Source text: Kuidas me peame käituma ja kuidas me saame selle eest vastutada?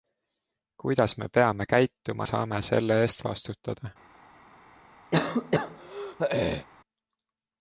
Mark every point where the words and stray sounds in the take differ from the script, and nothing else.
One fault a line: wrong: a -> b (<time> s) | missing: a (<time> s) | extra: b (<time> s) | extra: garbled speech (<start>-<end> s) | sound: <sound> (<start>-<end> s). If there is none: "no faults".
missing: ja kuidas me (2.3 s)
sound: throat clearing (5.1-6.7 s)